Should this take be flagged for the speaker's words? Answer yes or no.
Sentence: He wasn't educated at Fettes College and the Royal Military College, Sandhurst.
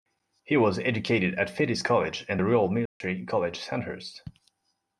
yes